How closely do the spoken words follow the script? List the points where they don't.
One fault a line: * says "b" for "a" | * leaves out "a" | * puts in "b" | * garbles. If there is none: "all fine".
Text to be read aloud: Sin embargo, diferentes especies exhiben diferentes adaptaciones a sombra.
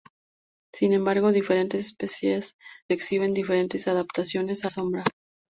all fine